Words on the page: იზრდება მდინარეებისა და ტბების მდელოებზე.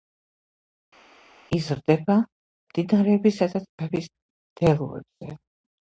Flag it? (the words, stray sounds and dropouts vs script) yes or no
no